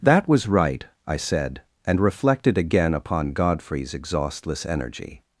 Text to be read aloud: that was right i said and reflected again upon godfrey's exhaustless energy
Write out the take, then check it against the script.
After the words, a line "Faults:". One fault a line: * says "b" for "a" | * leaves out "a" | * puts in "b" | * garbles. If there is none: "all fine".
that was right i said and reflected again upon godfrey's exhaustless energy
Faults:
all fine